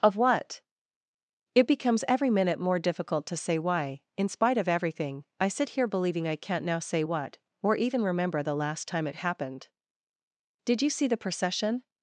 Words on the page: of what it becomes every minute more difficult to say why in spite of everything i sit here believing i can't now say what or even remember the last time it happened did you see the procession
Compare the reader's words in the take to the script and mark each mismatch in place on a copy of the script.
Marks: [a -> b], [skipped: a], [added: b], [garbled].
of what it becomes every minute more difficult to say why in spite of everything i sit here believing i can't now say what or even remember the last time it happened did you see the procession